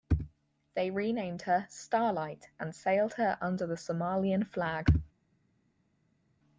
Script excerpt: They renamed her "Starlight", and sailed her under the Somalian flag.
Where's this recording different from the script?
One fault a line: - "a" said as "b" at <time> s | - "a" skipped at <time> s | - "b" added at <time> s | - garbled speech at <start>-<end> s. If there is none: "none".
none